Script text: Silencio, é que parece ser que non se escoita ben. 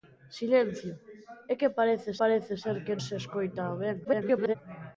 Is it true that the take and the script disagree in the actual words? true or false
true